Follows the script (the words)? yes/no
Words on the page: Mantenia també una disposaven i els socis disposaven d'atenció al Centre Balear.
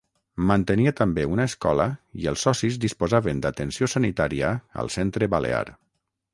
no